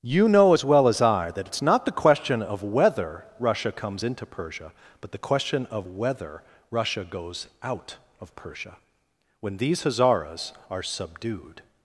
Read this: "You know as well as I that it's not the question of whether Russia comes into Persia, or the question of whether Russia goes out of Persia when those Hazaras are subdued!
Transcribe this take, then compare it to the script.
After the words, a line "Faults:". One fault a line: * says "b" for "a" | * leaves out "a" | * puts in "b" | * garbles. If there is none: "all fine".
"You know as well as I that it's not the question of whether Russia comes into Persia, but the question of whether Russia goes out of Persia when these Hazaras are subdued!
Faults:
* says "but" for "or"
* says "these" for "those"